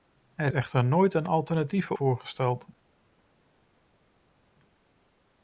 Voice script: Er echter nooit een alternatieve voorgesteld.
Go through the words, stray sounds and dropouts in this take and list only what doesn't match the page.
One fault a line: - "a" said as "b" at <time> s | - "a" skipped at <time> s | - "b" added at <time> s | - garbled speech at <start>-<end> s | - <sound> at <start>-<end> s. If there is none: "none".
none